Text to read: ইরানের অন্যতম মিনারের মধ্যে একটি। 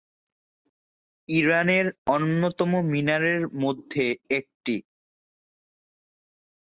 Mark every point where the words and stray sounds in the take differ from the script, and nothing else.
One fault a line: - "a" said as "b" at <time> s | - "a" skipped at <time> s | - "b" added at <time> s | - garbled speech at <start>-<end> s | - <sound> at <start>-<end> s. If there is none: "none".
none